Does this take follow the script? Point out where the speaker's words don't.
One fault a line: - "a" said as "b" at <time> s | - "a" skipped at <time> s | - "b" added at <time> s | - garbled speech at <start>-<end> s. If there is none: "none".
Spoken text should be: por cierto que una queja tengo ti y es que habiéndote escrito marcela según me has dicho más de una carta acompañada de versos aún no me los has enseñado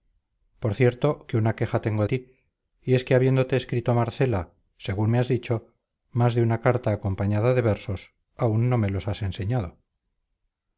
none